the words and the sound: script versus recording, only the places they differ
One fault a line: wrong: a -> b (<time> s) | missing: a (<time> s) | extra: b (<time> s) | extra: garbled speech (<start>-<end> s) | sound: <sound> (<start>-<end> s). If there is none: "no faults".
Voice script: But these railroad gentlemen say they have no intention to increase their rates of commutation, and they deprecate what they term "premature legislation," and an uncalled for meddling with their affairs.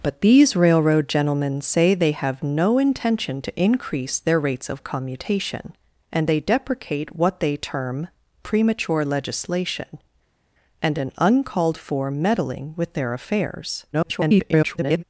extra: garbled speech (13.9-15.0 s)